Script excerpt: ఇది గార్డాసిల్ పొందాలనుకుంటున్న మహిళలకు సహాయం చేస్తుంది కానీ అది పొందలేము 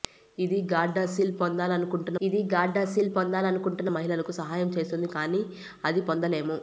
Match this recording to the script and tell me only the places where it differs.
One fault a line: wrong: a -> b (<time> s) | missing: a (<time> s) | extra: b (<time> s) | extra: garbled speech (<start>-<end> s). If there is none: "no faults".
extra: ఇది గార్డాసిల్ పొందాలనుకుంటున్న (2.2 s)